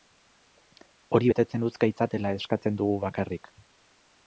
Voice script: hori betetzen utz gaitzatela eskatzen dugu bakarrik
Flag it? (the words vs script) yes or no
no